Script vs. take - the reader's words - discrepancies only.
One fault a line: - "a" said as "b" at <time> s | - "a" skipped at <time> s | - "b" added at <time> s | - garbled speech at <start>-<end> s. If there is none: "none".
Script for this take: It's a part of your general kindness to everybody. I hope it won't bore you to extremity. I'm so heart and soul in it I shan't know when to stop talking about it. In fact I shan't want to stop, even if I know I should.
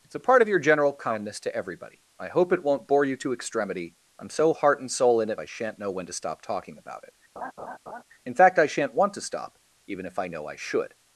none